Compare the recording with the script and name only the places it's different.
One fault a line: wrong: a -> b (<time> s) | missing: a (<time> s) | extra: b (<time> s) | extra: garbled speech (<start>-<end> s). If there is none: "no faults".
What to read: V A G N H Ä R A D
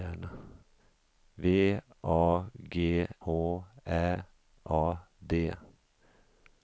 missing: N (3.1 s)
missing: R (4.2 s)